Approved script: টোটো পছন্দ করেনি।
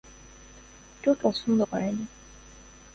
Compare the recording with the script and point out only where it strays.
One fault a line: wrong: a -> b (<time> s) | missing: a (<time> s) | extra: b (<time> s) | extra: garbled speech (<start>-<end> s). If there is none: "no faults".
no faults